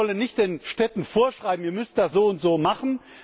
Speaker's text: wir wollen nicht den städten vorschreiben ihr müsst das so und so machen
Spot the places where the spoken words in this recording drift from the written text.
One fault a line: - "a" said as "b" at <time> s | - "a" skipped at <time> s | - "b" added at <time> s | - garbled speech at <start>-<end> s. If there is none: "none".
none